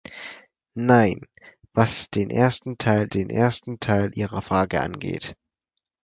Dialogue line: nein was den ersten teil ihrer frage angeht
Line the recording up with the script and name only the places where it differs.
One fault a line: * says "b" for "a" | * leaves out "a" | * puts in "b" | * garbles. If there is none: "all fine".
* puts in "den ersten teil"